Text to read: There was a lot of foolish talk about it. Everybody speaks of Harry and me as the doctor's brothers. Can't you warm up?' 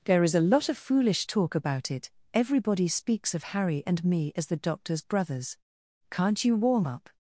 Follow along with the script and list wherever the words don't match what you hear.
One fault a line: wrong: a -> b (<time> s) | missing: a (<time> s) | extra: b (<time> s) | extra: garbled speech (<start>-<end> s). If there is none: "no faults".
wrong: was -> is (0.2 s)